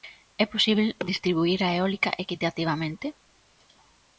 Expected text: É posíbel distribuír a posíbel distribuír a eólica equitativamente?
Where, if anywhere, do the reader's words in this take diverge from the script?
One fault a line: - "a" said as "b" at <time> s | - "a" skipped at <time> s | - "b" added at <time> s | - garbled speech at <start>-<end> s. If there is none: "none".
- "posíbel distribuír a" skipped at 1.7 s